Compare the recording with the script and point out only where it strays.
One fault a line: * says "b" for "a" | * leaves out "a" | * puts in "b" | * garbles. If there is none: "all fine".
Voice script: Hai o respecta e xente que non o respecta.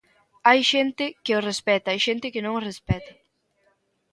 * puts in "xente que"